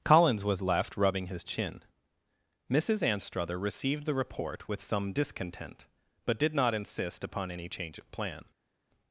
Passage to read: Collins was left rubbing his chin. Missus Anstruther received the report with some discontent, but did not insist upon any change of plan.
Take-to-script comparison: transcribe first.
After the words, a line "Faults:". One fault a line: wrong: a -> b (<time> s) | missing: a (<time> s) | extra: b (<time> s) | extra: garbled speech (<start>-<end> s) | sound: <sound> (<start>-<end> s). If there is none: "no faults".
Collins was left rubbing his chin. Missus Anstruther received the report with some discontent, but did not insist upon any change of plan.
Faults:
no faults